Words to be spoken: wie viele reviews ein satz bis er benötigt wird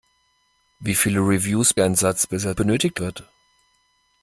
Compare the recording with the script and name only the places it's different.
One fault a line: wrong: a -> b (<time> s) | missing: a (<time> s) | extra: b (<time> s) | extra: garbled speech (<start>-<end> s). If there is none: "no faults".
no faults